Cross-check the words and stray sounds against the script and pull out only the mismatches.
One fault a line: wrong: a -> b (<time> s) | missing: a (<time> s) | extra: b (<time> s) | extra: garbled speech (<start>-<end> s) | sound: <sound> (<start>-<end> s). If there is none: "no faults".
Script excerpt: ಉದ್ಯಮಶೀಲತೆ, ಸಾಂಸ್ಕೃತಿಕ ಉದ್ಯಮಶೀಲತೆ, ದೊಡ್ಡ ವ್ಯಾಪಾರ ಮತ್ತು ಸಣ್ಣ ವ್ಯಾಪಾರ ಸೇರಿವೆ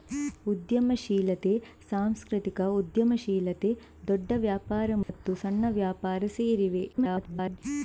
sound: dropout (5.0-5.1 s)
extra: garbled speech (6.9-7.6 s)